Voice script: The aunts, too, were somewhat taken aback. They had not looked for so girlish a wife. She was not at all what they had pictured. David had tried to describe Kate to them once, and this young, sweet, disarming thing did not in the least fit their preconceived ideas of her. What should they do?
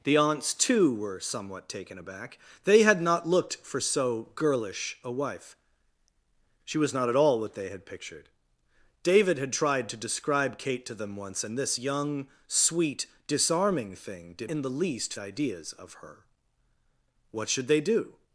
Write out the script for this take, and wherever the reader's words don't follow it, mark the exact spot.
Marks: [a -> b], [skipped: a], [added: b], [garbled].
The aunts, too, were somewhat taken aback. They had not looked for so girlish a wife. She was not at all what they had pictured. David had tried to describe Kate to them once, and this young, sweet, disarming thing did [skipped: not] in the least [skipped: fit their preconceived] ideas of her. What should they do?